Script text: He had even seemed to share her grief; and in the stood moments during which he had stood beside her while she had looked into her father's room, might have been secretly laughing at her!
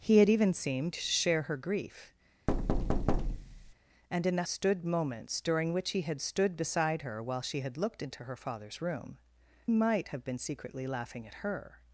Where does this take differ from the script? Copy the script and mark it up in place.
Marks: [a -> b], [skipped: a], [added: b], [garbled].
He had even seemed to share her grief; and in the stood moments during which he had stood beside her while she had looked into her father's room, might have been secretly laughing at her!